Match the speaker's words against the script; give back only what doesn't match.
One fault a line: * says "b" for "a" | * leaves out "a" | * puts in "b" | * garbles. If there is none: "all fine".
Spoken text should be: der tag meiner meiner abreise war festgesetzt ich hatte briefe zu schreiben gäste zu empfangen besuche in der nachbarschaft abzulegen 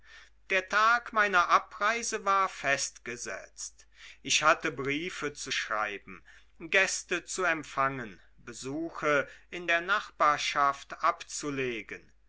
* leaves out "meiner"